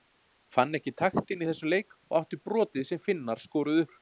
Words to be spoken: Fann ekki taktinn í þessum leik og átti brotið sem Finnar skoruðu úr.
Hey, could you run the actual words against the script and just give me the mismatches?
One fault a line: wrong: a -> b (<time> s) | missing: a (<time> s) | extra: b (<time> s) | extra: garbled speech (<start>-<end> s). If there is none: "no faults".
no faults